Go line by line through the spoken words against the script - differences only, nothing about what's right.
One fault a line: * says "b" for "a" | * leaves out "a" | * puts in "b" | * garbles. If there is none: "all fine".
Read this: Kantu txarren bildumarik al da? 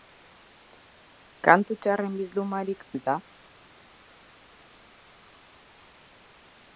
all fine